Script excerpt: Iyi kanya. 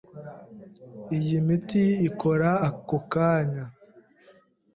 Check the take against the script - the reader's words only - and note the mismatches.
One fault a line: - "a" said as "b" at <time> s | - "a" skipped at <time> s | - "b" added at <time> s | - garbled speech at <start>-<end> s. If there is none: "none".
- "miti ikora ako" added at 1.5 s